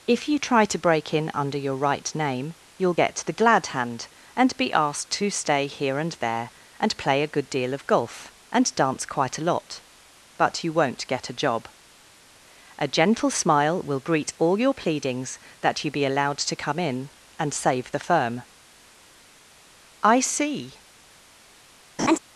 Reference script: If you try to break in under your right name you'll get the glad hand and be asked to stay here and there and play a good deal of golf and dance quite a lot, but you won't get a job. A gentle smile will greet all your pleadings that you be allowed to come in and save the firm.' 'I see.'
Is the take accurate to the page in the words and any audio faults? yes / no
no